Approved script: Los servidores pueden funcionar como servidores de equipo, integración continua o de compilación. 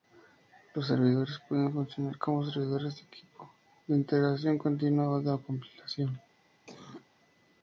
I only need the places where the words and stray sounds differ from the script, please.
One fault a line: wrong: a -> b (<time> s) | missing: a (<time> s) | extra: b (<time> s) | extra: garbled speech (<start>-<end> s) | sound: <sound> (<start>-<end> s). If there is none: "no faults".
extra: de (3.9 s)
sound: cough (6.7-7.1 s)